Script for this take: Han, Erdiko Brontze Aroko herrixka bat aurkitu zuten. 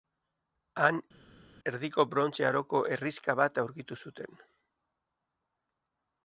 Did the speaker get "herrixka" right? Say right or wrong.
right